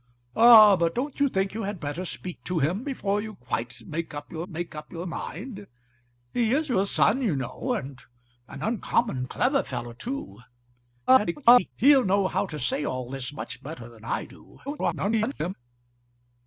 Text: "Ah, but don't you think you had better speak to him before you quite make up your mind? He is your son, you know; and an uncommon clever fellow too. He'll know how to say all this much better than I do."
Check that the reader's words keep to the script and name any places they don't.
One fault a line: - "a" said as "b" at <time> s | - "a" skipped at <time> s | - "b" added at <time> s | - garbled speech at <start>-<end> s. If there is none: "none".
- "make up your" added at 4.5 s
- garbled speech at 11.1-11.7 s
- garbled speech at 14.7-15.5 s